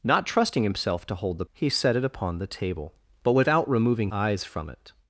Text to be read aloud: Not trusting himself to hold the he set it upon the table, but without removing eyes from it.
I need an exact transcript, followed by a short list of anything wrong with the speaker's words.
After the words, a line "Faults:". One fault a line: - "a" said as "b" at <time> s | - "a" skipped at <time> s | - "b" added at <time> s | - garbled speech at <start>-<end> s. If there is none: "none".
Not trusting himself to hold the he set it upon the table, but without removing eyes from it.
Faults:
none